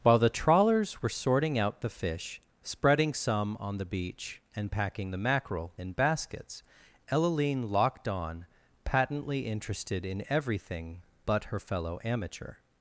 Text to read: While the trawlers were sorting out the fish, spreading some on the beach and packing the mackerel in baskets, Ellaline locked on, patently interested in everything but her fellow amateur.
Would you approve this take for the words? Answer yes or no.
yes